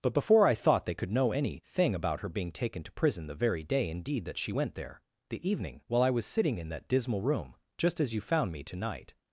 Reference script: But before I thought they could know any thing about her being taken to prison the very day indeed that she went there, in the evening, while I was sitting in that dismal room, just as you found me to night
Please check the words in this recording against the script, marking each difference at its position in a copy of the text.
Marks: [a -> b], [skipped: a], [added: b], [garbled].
But before I thought they could know any thing about her being taken to prison the very day indeed that she went there, [skipped: in] the evening, while I was sitting in that dismal room, just as you found me to night